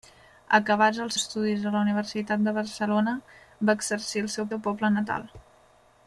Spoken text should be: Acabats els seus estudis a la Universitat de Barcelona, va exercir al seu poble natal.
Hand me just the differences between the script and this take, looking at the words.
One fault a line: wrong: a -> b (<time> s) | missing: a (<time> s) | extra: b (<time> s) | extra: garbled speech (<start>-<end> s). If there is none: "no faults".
missing: seus (1.2 s)
extra: seu (4.5 s)